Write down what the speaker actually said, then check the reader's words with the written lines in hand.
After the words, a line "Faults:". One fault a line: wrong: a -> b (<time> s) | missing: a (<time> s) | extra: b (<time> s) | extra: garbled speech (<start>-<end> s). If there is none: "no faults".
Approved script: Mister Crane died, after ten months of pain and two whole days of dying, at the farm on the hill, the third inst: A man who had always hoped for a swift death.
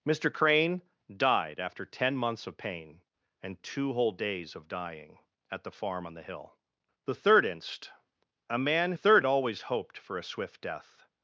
Mister Crane died, after ten months of pain and two whole days of dying, at the farm on the hill, the third inst: A man third had always hoped for a swift death.
Faults:
wrong: who -> third (8.9 s)